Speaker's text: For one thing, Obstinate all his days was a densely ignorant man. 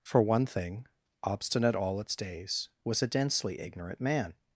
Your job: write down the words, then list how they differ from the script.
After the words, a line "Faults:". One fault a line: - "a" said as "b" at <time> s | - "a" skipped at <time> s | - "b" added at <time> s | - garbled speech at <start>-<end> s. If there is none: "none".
For one thing, Obstinate all its days was a densely ignorant man.
Faults:
- "his" said as "its" at 2.0 s